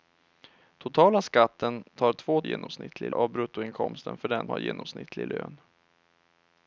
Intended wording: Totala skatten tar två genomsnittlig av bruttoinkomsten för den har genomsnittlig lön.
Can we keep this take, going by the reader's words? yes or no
yes